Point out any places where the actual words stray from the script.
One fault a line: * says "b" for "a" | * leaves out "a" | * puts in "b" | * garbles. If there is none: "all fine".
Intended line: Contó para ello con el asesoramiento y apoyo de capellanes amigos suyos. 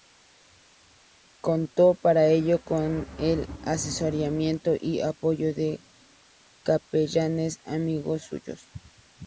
all fine